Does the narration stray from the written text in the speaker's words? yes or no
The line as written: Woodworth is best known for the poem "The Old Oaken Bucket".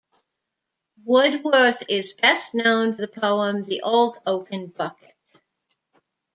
yes